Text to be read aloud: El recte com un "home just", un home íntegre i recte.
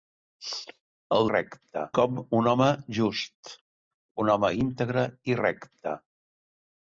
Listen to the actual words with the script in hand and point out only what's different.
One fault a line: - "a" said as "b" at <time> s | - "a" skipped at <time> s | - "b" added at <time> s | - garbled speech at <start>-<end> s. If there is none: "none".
none